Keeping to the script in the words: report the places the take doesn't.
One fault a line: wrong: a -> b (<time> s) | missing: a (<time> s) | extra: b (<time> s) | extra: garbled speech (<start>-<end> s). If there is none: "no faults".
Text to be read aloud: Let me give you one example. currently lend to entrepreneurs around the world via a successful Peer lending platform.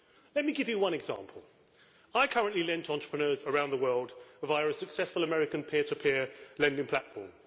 extra: I (2.1 s)
extra: American peer to (5.2 s)